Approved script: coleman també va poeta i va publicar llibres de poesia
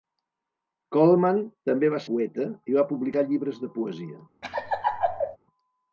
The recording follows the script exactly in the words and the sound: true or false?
false